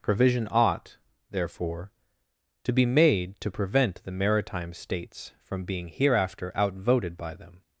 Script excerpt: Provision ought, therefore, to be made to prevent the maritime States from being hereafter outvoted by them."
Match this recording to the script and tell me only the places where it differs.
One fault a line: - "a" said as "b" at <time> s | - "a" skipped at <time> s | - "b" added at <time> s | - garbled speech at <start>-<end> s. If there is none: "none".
none